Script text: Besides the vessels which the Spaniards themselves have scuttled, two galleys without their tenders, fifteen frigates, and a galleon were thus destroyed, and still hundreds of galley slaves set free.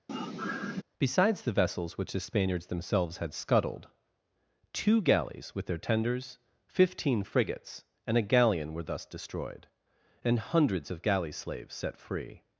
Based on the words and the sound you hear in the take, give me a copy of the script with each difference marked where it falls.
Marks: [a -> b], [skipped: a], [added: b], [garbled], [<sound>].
[sigh] Besides the vessels which the Spaniards themselves [have -> had] scuttled, two galleys [without -> with] their tenders, fifteen frigates, and a galleon were thus destroyed, and [skipped: still] hundreds of galley slaves set free.